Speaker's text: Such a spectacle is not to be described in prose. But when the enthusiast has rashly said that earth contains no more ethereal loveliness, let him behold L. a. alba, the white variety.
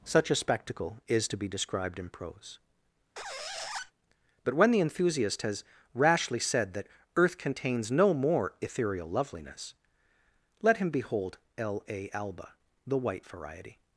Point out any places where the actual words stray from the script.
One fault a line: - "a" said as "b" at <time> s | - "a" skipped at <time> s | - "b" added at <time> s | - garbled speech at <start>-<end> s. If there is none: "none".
- "not" skipped at 1.3 s